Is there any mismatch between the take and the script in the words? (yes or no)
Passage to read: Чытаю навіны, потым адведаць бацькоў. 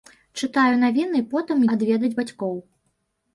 no